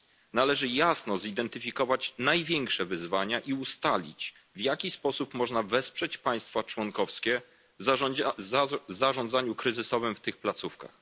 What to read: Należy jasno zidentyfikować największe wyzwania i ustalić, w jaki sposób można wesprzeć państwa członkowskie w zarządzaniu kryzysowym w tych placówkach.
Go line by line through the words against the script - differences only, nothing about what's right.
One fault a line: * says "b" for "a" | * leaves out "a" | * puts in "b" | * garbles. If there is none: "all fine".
all fine